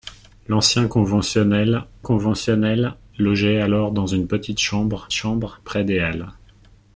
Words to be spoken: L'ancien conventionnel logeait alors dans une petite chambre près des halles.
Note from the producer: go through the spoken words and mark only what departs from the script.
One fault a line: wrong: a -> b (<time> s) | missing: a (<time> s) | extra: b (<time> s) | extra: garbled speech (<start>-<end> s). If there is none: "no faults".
extra: conventionnel (2.0 s)
extra: chambre (5.1 s)